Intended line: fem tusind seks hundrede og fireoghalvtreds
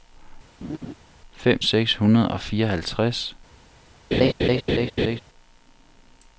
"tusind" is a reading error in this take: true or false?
true